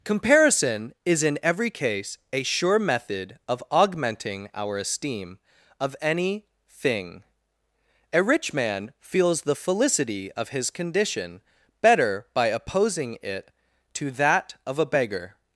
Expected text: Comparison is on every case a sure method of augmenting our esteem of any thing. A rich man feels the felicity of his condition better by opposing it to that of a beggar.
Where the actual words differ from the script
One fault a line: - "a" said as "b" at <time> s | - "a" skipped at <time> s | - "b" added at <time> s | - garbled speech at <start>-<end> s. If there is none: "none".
- "on" said as "in" at 1.2 s